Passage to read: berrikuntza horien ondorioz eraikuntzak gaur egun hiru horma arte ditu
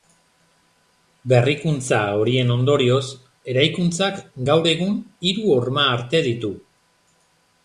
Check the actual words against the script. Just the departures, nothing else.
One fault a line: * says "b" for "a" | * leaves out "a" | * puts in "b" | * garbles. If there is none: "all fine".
all fine